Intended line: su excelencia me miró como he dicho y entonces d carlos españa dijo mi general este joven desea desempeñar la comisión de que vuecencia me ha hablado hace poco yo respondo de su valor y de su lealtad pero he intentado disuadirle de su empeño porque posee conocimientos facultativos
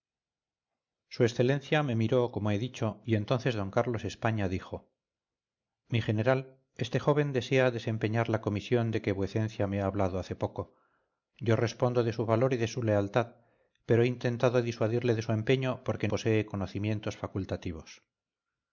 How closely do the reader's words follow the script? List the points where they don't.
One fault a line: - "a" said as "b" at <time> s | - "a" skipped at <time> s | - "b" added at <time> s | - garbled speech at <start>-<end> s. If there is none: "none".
none